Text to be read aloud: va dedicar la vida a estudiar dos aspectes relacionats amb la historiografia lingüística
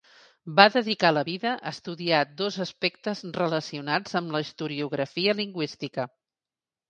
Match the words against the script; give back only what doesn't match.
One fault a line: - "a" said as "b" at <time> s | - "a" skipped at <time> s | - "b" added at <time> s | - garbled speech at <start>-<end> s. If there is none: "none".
none